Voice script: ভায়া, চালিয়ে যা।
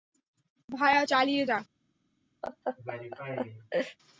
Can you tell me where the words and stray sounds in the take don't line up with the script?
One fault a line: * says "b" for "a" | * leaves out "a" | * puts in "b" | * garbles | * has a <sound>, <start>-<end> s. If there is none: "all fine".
* has a laugh, 2.4-4.0 s